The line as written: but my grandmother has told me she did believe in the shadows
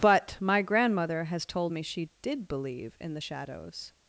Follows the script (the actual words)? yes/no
yes